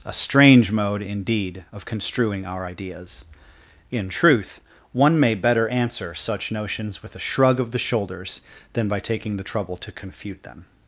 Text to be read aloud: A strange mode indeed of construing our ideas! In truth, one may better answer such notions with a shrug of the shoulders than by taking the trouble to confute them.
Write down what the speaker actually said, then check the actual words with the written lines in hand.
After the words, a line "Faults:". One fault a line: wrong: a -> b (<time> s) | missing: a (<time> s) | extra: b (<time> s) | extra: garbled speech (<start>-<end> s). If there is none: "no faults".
A strange mode indeed of construing our ideas! In truth, one may better answer such notions with a shrug of the shoulders than by taking the trouble to confute them.
Faults:
no faults